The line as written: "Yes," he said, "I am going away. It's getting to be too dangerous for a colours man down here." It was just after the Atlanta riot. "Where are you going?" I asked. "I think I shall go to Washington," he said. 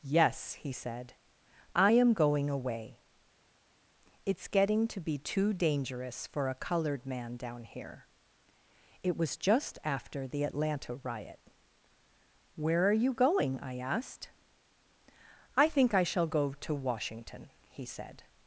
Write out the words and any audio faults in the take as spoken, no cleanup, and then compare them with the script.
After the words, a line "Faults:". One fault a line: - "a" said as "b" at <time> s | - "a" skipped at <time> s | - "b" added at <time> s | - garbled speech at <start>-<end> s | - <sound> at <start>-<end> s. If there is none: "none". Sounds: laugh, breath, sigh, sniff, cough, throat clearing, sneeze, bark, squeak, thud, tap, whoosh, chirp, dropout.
"Yes," he said, "I am going away. It's getting to be too dangerous for a coloured man down here." It was just after the Atlanta riot. "Where are you going?" I asked. "I think I shall go to Washington," he said.
Faults:
- "colours" said as "coloured" at 6.5 s